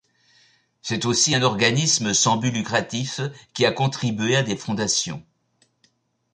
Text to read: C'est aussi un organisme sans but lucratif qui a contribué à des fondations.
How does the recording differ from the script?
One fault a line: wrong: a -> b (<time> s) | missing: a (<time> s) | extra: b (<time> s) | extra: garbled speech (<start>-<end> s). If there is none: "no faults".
no faults